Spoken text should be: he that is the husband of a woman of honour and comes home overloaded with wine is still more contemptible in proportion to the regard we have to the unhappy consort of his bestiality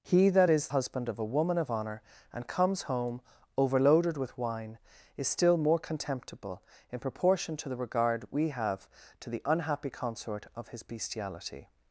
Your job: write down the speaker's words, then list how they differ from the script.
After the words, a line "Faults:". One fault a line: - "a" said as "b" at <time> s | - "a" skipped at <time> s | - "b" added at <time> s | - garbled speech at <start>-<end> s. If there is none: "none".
he that is husband of a woman of honour and comes home overloaded with wine is still more contemptible in proportion to the regard we have to the unhappy consort of his bestiality
Faults:
- "the" skipped at 0.7 s